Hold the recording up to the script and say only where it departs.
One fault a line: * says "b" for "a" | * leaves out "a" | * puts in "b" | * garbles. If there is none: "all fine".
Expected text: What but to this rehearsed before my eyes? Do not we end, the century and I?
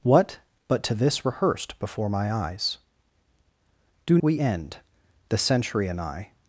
* leaves out "not"